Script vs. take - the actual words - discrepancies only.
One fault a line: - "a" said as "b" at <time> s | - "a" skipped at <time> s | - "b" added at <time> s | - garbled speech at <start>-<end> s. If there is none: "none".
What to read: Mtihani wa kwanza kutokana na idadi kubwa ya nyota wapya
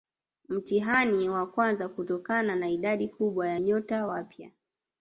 none